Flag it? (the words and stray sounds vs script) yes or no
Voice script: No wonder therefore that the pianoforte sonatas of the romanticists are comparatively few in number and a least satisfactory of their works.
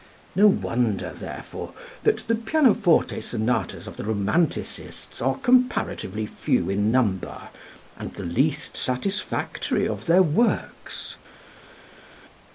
yes